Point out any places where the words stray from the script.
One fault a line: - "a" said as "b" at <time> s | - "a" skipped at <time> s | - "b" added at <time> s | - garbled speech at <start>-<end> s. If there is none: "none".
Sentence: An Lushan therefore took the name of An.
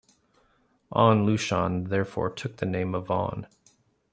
none